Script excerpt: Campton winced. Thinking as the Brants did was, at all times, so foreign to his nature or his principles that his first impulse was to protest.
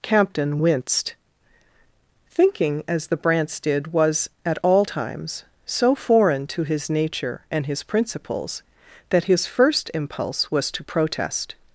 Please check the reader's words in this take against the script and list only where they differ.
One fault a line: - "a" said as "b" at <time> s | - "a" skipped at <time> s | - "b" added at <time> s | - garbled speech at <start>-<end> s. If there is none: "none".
- "or" said as "and" at 7.5 s